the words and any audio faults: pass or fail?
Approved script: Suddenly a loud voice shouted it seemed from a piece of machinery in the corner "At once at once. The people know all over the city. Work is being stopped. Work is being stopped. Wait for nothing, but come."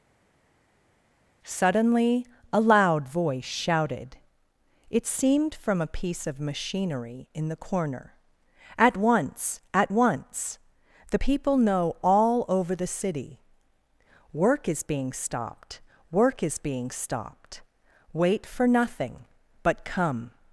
pass